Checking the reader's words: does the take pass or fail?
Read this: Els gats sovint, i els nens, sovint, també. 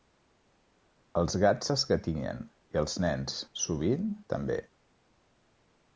fail